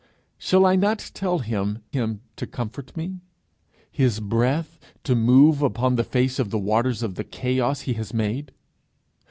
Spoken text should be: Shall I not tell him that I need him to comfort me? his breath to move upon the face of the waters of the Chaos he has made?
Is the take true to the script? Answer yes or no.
no